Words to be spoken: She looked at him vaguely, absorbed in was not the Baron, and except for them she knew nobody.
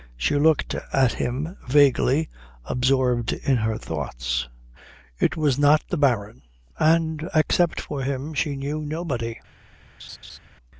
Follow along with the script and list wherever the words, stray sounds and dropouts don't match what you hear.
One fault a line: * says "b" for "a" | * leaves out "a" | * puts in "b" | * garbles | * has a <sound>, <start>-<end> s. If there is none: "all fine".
* puts in "her thoughts It"
* says "him" for "them"
* has a laugh, 10.0-10.4 s